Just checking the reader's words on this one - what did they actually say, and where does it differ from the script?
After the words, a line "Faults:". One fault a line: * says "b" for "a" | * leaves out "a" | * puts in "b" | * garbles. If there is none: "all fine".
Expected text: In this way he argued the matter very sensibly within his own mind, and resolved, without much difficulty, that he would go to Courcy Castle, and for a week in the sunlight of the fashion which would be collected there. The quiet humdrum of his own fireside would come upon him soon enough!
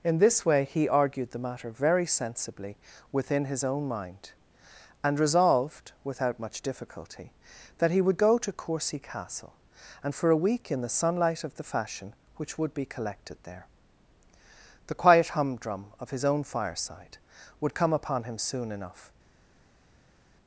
In this way he argued the matter very sensibly within his own mind, and resolved, without much difficulty, that he would go to Courcy Castle, and for a week in the sunlight of the fashion which would be collected there. The quiet humdrum of his own fireside would come upon him soon enough!
Faults:
all fine